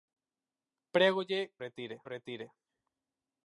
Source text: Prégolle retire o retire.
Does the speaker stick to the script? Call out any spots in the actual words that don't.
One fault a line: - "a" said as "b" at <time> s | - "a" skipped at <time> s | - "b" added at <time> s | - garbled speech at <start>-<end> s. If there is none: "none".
none